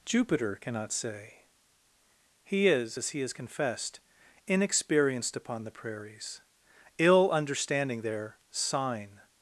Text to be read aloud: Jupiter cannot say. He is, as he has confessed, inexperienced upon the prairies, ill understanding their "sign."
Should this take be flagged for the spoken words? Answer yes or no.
no